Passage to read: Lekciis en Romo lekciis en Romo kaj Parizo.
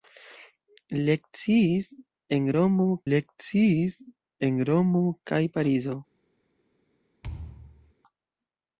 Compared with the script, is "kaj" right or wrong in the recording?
right